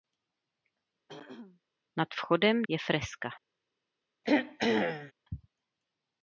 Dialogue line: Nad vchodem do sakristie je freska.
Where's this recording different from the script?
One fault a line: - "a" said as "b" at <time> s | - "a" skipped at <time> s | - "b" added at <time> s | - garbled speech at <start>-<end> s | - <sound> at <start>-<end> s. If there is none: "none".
- throat clearing at 1.1-1.6 s
- "do sakristie" skipped at 2.6 s
- throat clearing at 4.2-5.1 s